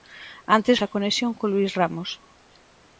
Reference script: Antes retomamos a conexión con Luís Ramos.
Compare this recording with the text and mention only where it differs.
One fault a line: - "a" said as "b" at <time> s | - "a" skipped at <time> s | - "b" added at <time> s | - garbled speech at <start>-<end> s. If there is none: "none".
- "retomamos" skipped at 0.8 s